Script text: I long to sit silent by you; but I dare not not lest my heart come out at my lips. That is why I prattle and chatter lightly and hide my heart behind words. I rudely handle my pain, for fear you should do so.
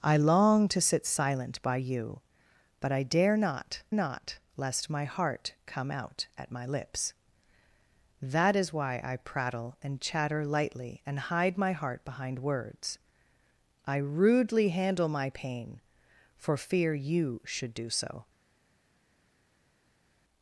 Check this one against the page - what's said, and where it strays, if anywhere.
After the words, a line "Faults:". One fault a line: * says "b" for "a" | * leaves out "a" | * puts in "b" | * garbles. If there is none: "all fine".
I long to sit silent by you; but I dare not not lest my heart come out at my lips. That is why I prattle and chatter lightly and hide my heart behind words. I rudely handle my pain, for fear you should do so.
Faults:
all fine